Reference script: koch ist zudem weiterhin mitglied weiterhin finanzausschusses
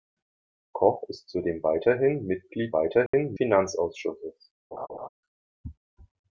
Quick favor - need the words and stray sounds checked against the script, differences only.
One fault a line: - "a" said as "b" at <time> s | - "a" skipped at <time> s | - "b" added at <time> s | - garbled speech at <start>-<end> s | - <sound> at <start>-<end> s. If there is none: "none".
- dropout at 3.1-3.1 s
- laugh at 4.7-5.1 s